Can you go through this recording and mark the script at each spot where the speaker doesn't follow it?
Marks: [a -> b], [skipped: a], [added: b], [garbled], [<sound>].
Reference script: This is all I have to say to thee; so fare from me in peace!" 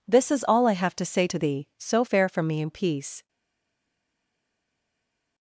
This is all I have to say to thee; so fare from me in peace!"